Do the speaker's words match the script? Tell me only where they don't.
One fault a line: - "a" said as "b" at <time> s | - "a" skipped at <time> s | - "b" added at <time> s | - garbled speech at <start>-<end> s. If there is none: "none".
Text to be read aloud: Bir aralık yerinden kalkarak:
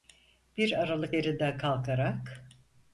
none